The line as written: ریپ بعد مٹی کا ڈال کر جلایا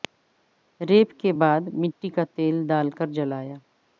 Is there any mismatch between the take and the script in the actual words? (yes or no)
yes